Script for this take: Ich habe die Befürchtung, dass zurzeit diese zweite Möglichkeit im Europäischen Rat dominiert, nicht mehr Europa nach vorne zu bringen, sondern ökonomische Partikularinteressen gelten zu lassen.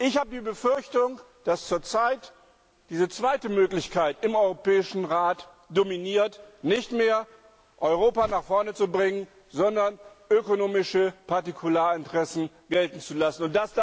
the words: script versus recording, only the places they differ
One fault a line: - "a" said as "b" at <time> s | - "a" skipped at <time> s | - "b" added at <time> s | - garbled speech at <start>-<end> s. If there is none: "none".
none